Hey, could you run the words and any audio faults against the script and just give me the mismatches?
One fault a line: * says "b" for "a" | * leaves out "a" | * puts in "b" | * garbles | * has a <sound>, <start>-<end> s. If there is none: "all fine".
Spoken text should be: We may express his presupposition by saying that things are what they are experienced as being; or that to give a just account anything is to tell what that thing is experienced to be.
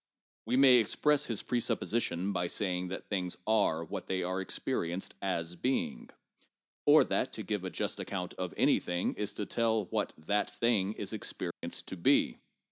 * puts in "of"
* has a dropout, 11.5-11.6 s